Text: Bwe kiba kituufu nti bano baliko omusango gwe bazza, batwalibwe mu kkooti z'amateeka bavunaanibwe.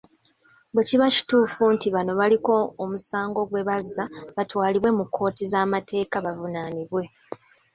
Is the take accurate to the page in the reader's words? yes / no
yes